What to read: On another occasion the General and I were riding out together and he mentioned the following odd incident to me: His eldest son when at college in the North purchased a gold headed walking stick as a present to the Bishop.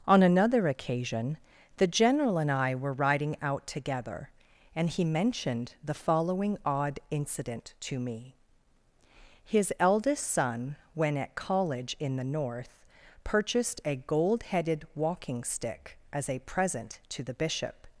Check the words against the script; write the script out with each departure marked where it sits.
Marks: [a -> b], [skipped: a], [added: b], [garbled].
On another occasion the General and I were riding out together and he mentioned the following odd incident to me: His eldest son when at college in the North purchased a gold headed walking stick as a present to the Bishop.